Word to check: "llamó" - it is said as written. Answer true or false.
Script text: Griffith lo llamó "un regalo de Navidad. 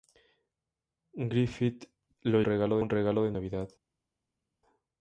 false